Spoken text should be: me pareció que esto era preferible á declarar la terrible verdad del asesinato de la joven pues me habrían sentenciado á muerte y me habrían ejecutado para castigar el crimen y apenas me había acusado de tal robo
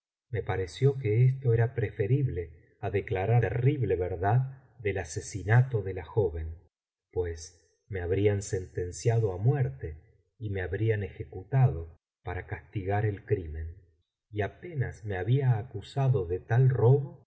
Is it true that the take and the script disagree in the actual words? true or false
true